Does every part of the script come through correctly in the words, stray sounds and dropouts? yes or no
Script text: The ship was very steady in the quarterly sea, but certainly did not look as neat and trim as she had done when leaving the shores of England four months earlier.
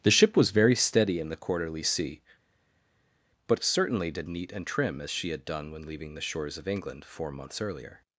no